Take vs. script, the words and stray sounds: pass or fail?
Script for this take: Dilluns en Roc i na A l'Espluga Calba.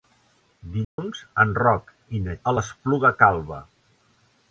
fail